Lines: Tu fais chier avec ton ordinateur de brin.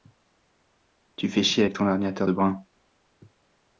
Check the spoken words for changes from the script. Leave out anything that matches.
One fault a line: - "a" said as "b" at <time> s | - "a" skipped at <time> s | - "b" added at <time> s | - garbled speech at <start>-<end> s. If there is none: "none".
none